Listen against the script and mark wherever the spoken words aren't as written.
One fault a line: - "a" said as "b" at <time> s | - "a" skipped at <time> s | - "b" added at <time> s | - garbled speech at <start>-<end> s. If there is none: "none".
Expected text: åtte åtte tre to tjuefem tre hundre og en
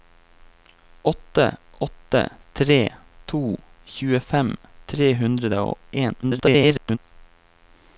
- garbled speech at 6.2-7.0 s